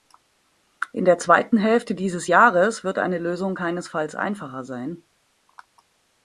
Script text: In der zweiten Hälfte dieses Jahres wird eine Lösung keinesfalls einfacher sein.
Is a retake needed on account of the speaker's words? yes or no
no